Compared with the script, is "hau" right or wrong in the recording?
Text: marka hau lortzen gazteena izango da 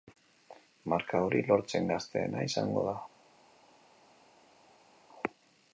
wrong